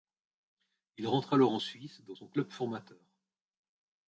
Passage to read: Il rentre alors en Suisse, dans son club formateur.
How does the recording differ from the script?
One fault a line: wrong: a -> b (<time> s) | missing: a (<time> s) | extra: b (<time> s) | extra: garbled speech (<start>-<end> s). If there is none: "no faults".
no faults